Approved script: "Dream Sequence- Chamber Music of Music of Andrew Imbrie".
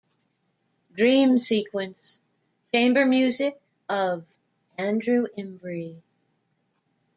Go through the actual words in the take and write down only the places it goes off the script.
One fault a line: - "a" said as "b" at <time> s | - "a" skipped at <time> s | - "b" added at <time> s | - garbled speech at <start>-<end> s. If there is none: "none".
- "Music of" skipped at 4.3 s